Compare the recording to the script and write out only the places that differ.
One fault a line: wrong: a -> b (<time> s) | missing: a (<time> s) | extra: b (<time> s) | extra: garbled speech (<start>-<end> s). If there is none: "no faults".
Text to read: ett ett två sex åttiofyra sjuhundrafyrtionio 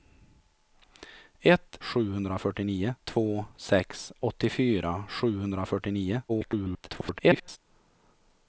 wrong: ett -> sjuhundrafyrtionio (1.8 s)
extra: garbled speech (6.3-7.6 s)